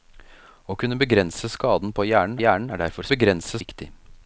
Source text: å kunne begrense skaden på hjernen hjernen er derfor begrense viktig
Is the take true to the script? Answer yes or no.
yes